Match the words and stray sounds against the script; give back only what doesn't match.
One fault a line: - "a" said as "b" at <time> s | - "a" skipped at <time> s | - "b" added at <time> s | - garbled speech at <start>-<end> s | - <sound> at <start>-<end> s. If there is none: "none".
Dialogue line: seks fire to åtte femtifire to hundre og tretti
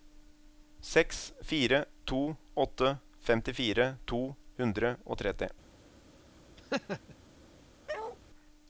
- laugh at 6.6-7.1 s
- bark at 7.9-8.2 s